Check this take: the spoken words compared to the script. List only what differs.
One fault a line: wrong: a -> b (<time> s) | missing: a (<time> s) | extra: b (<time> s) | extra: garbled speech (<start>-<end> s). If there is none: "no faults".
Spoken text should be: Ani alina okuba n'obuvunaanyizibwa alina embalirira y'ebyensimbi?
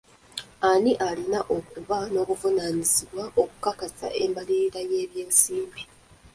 wrong: alina -> okukakasa (3.4 s)